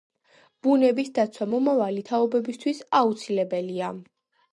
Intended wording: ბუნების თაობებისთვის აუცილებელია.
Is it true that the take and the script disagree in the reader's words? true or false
true